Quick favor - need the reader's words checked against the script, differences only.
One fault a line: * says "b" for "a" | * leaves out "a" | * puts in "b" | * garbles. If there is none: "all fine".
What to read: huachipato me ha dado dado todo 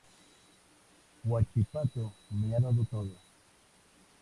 * leaves out "dado"